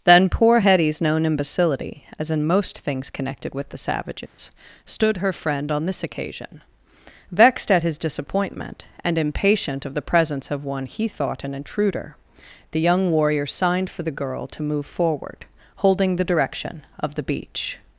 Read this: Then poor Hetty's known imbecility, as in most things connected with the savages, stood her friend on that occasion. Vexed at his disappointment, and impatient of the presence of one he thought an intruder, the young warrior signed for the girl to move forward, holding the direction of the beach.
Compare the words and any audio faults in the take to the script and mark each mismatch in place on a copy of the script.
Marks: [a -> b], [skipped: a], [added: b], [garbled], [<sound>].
Then poor Hetty's known imbecility, as in most things connected with the savages, [dropout] stood her friend on [that -> this] occasion. Vexed at his disappointment, and impatient of the presence of one he thought an intruder, the young warrior signed for the girl to move forward, holding the direction of the beach.